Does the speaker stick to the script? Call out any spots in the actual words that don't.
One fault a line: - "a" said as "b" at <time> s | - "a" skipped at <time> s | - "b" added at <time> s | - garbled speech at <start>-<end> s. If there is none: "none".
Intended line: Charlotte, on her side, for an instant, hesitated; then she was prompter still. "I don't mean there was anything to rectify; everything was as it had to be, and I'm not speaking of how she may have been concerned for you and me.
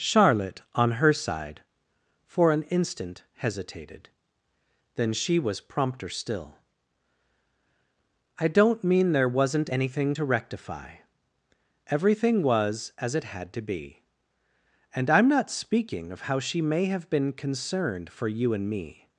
- "was" said as "wasn't" at 9.3 s